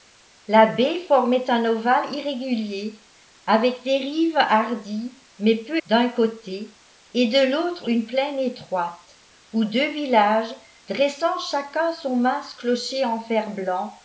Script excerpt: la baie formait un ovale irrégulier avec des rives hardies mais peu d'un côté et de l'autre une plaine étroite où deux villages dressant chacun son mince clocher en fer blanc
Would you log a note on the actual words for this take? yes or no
no